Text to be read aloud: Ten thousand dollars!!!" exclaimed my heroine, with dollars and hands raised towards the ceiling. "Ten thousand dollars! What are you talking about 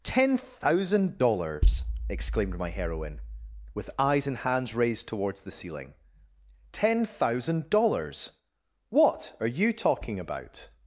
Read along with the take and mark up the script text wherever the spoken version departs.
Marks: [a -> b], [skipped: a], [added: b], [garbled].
Ten thousand dollars!!!" exclaimed my heroine, with [dollars -> eyes] and hands raised towards the ceiling. "Ten thousand dollars! What are you talking about